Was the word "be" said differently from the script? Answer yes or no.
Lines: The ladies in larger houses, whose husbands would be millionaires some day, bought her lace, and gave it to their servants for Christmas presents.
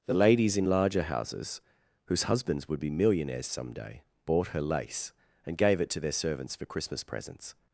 no